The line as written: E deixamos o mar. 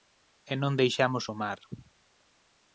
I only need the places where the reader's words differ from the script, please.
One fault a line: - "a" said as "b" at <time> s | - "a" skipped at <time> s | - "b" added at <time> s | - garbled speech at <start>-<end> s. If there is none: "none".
- "non" added at 0.6 s